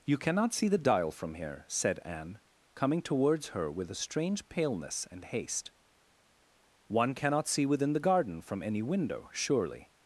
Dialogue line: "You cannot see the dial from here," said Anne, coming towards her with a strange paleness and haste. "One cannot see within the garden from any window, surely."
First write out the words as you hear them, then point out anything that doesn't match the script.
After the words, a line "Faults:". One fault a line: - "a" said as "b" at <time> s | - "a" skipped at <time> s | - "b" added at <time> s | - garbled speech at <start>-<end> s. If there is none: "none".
"You cannot see the dial from here," said Anne, coming towards her with a strange paleness and haste. "One cannot see within the garden from any window, surely."
Faults:
none